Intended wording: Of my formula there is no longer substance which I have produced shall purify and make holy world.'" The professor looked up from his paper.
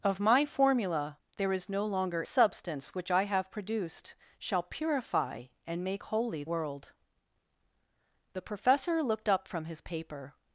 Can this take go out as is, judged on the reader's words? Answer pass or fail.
pass